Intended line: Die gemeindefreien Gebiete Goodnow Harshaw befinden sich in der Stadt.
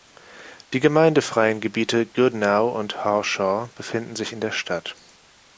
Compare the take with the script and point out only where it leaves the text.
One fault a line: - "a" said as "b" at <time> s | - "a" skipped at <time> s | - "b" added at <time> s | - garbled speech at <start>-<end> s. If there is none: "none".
- "und" added at 2.8 s